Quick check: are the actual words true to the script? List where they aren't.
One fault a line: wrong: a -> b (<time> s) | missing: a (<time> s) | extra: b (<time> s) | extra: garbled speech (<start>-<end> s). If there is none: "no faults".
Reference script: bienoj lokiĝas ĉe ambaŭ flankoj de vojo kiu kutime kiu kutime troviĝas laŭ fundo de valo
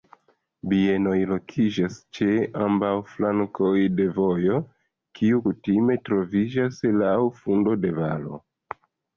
missing: kiu kutime (6.0 s)